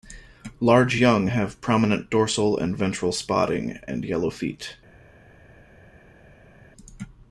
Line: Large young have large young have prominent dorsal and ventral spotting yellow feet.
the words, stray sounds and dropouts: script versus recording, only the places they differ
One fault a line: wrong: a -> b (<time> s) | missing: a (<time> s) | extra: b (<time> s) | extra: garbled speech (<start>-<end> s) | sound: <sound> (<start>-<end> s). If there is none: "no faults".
missing: large young have (1.6 s)
extra: and (3.9 s)